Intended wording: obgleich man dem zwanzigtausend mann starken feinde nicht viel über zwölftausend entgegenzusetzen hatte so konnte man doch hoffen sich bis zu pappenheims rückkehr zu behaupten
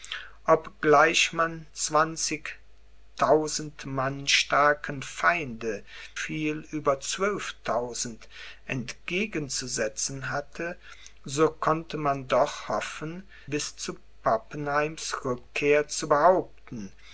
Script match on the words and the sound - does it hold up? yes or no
no